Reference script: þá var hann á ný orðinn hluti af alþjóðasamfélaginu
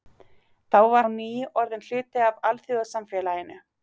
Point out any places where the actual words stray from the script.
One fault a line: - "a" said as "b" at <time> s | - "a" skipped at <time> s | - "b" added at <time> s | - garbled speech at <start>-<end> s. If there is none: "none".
- "hann" skipped at 1.1 s